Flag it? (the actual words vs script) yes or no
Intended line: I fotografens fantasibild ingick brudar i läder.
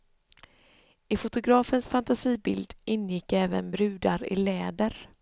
yes